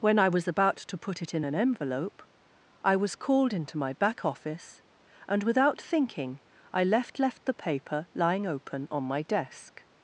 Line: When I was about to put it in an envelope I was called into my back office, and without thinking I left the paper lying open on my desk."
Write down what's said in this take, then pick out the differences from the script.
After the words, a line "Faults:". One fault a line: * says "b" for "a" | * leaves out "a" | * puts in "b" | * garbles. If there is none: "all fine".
When I was about to put it in an envelope I was called into my back office, and without thinking I left left the paper lying open on my desk."
Faults:
* puts in "left"